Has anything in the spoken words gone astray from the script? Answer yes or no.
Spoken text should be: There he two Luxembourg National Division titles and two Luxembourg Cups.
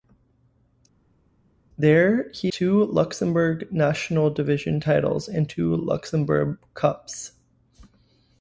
no